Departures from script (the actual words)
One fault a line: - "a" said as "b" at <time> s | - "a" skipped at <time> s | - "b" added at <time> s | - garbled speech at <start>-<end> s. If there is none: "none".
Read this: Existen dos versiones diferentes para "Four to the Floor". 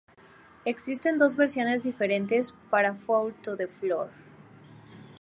none